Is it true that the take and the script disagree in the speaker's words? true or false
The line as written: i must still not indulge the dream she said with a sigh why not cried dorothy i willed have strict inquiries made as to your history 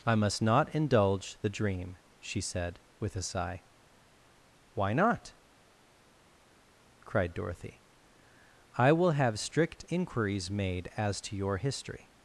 true